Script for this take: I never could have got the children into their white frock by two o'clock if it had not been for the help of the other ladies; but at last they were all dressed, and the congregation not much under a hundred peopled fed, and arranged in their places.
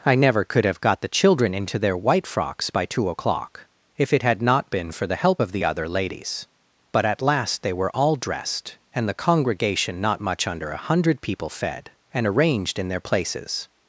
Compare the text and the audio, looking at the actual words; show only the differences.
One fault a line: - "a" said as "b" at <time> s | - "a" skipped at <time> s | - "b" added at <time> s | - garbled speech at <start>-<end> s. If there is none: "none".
- "frock" said as "frocks" at 2.2 s
- "peopled" said as "people" at 11.2 s